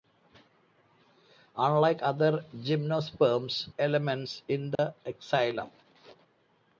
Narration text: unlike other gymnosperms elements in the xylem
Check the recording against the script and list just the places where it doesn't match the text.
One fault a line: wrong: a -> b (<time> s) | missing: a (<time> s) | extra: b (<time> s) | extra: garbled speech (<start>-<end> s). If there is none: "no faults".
no faults